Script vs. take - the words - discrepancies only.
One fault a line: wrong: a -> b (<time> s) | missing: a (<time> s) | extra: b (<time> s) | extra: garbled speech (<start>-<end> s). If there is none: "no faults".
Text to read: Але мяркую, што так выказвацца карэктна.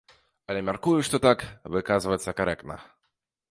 no faults